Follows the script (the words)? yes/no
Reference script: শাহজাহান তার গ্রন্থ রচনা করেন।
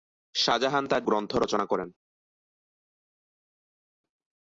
yes